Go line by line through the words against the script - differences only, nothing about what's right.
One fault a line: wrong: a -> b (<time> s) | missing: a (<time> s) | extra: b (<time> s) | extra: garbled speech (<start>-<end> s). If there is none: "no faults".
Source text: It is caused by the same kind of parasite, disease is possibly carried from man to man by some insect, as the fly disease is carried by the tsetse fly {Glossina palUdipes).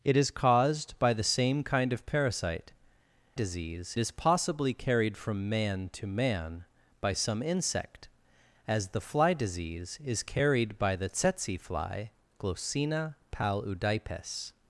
no faults